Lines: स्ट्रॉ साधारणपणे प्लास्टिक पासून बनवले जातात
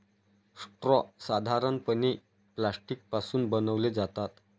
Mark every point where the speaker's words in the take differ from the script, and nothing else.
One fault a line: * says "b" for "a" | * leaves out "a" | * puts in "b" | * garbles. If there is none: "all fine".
all fine